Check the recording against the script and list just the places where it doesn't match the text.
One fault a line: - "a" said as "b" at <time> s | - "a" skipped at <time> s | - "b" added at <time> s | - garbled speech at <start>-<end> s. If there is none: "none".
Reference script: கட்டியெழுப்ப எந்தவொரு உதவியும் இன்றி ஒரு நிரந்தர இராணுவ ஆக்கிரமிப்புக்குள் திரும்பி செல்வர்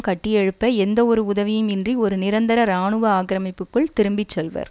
none